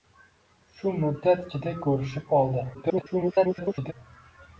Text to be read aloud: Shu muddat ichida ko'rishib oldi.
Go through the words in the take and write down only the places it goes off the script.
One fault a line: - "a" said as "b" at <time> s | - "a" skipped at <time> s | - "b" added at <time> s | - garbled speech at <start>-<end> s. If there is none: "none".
- garbled speech at 2.7-3.9 s